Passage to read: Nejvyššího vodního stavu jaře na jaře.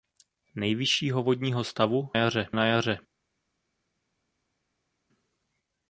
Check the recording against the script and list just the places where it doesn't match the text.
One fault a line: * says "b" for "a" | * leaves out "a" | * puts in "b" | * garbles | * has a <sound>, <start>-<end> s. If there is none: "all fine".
all fine